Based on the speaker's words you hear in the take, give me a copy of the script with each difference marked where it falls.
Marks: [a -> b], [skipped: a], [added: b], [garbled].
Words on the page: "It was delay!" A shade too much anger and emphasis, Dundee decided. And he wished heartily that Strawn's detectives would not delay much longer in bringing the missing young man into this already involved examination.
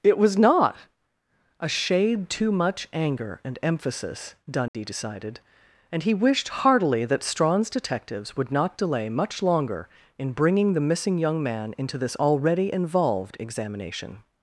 "It was [delay!" -> not] A shade too much anger and emphasis, Dundee decided. And he wished heartily that Strawn's detectives would not delay much longer in bringing the missing young man into this already involved examination.